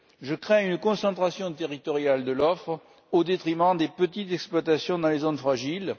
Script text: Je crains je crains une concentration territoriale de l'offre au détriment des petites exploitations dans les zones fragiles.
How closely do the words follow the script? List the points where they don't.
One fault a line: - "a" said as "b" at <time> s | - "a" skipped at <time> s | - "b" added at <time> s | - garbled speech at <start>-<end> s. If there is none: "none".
- "je crains" skipped at 0.7 s